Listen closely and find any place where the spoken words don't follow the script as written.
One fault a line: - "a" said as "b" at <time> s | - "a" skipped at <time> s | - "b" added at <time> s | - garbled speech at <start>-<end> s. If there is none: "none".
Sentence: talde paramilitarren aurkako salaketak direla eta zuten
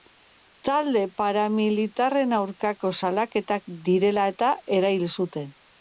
- "erail" added at 4.8 s